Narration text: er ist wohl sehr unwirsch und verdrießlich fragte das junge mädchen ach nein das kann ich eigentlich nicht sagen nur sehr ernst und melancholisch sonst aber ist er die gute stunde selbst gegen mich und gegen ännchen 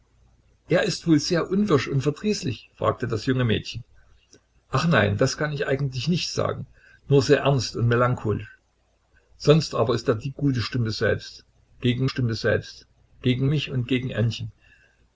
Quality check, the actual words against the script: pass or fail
fail